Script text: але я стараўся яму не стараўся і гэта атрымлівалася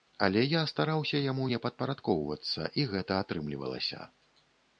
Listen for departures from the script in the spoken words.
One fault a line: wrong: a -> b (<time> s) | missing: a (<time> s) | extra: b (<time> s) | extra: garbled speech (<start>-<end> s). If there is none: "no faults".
wrong: стараўся -> падпарадкоўвацца (1.7 s)